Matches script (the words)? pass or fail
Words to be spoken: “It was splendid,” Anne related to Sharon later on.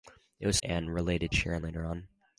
fail